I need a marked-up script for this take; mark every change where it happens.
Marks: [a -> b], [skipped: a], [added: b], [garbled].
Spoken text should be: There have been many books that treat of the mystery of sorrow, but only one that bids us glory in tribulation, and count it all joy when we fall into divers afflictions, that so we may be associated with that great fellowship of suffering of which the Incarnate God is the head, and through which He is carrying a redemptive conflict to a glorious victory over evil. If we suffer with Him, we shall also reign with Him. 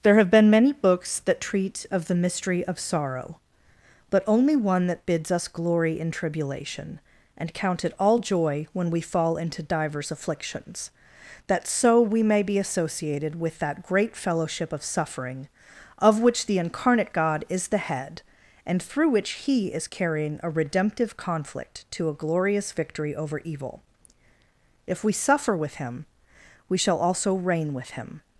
There have been many books that treat of the mystery of sorrow, but only one that bids us glory in tribulation, and count it all joy when we fall into divers afflictions, that so we may be associated with that great fellowship of suffering of which the Incarnate God is the head, and through which He is carrying a redemptive conflict to a glorious victory over evil. If we suffer with Him, we shall also reign with Him.